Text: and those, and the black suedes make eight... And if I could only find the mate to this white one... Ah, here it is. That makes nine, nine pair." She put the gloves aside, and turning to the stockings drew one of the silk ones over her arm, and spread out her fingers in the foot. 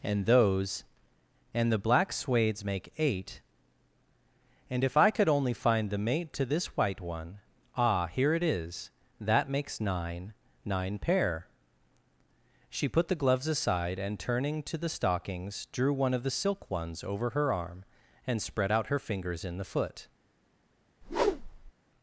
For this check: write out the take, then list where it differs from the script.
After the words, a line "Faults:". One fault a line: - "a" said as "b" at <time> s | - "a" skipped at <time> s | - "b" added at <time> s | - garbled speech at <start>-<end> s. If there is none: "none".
and those, and the black suedes make eight... And if I could only find the mate to this white one... Ah, here it is. That makes nine, nine pair." She put the gloves aside, and turning to the stockings drew one of the silk ones over her arm, and spread out her fingers in the foot.
Faults:
none